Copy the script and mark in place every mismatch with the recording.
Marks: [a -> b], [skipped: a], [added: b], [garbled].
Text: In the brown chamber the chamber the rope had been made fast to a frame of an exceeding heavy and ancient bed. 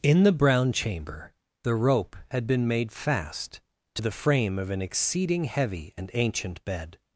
In the brown chamber the [skipped: chamber the] rope had been made fast to [a -> the] frame of an exceeding heavy and ancient bed.